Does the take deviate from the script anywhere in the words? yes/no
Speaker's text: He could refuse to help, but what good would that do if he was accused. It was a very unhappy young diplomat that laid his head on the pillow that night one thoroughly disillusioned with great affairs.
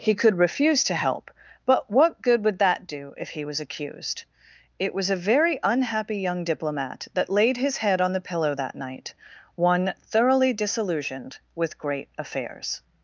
no